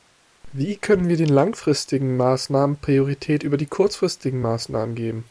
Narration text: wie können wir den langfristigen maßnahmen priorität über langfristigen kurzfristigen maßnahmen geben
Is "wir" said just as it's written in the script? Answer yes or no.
yes